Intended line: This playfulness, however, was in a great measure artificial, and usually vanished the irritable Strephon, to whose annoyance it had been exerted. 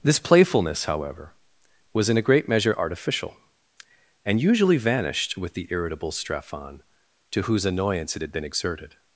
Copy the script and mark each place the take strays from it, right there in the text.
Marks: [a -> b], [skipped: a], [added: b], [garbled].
This playfulness, however, was in a great measure artificial, and usually vanished [added: with] the irritable Strephon, to whose annoyance it had been exerted.